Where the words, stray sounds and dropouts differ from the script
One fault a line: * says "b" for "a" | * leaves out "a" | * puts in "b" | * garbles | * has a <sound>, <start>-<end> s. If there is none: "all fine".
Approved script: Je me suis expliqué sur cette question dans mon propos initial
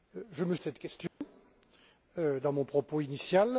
* leaves out "suis expliqué"
* has a dropout, 1.1-1.2 s